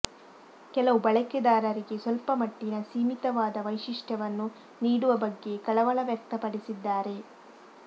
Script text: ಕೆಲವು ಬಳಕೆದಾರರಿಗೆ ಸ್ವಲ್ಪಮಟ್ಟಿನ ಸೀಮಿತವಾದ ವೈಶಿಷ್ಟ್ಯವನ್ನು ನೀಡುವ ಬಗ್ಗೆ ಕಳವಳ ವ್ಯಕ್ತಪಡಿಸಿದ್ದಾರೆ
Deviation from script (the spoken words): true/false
false